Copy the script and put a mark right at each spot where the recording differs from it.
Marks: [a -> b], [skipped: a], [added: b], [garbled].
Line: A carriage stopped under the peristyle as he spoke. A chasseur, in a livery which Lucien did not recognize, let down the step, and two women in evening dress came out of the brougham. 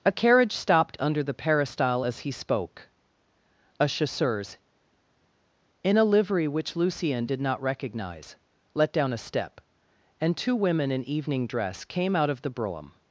A carriage stopped under the peristyle as he spoke. A [chasseur, -> chasseurs] in a livery which Lucien did not recognize, let down [the -> a] step, and two women in evening dress came out of the brougham.